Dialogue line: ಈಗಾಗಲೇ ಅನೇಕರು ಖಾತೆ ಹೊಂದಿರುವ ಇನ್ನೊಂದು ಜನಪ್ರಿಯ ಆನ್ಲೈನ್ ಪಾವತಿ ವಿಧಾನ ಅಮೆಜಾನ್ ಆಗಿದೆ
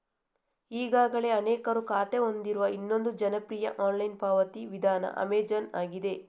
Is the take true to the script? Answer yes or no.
yes